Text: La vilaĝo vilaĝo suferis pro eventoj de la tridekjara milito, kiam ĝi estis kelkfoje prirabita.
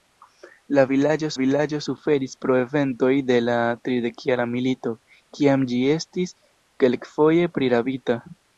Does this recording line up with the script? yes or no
yes